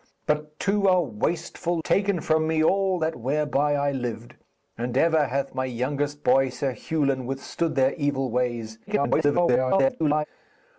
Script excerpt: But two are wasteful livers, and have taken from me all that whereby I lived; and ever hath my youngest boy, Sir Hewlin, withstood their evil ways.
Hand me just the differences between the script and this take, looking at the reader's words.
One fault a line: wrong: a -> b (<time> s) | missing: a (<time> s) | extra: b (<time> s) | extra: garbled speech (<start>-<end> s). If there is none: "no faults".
missing: livers and have (1.8 s)
extra: garbled speech (8.9-10.2 s)